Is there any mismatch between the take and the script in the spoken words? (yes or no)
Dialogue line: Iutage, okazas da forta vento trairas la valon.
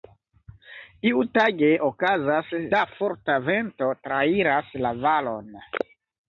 no